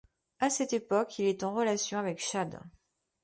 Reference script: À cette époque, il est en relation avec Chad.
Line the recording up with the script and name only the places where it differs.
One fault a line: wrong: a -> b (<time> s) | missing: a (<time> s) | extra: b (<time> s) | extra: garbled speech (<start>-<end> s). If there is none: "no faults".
no faults